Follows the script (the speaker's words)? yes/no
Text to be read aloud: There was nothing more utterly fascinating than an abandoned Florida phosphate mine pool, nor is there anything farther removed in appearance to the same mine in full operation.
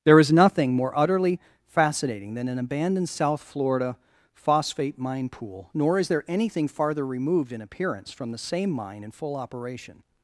no